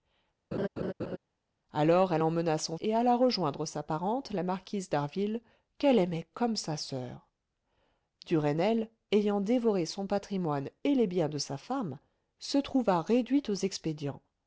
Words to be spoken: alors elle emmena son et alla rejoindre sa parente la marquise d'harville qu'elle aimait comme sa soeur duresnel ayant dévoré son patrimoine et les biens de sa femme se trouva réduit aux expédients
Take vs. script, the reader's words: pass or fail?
pass